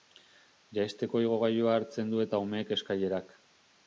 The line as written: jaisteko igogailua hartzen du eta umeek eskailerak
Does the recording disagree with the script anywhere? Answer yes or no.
no